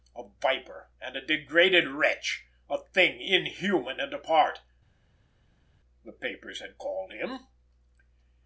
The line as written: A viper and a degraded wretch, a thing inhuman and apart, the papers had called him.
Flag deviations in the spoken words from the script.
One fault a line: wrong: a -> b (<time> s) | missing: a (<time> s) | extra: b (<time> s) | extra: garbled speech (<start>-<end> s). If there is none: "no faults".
no faults